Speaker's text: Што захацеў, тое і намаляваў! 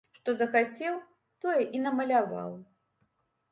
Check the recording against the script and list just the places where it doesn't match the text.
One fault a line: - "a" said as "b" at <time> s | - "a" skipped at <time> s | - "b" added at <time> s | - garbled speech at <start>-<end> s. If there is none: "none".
none